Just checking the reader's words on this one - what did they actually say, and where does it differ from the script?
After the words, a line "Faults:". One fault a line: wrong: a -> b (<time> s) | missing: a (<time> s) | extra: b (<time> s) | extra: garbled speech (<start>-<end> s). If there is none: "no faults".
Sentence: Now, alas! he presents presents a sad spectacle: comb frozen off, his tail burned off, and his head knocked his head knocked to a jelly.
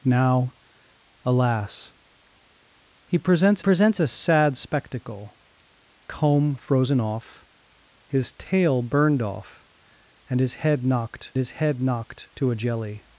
Now, alas! he presents presents a sad spectacle: comb frozen off, his tail burned off, and his head knocked his head knocked to a jelly.
Faults:
no faults